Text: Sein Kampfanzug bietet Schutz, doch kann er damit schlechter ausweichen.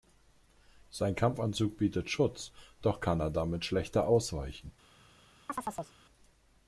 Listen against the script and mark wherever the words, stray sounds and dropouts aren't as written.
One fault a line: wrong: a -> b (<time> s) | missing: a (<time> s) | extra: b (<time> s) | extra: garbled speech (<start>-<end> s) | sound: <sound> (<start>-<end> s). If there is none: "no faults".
sound: chirp (5.5-6.0 s)